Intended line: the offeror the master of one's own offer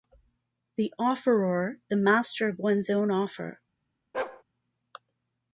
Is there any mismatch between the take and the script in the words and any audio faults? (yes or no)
yes